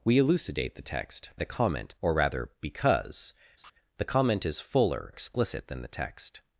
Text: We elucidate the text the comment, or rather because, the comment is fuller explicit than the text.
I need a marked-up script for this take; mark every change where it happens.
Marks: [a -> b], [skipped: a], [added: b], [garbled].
We elucidate the text the comment, or rather because, the comment is fuller explicit than the text.